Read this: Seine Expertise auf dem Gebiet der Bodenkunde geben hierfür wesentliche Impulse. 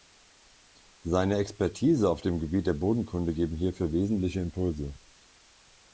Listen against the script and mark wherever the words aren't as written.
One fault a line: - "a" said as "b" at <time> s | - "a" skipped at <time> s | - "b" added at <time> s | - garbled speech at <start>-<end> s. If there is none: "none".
none